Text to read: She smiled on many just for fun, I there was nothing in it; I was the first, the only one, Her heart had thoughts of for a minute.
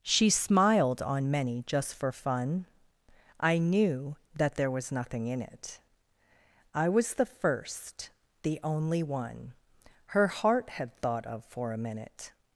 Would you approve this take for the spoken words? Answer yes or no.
no